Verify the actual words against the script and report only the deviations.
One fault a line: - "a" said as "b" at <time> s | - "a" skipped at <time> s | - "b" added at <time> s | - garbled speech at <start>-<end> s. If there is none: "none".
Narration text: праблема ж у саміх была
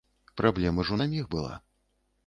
none